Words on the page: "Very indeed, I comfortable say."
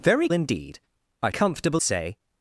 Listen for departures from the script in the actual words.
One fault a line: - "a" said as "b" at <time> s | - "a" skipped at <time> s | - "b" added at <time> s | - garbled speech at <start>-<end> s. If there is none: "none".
none